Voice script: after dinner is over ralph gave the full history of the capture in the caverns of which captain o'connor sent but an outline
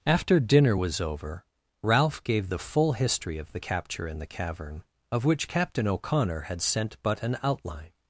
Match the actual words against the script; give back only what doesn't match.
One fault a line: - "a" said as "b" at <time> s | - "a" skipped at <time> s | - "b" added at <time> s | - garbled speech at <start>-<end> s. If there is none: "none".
- "is" said as "was" at 0.7 s
- "caverns" said as "cavern" at 4.3 s
- "had" added at 6.4 s